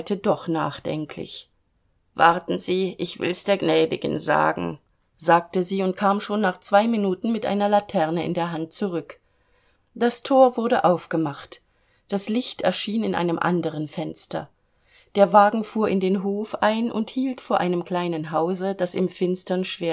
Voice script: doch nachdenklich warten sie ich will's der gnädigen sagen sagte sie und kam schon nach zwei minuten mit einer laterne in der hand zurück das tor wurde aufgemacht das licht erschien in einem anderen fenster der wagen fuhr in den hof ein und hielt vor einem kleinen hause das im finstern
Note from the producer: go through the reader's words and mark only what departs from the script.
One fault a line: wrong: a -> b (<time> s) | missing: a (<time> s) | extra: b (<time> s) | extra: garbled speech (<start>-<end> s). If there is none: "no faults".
no faults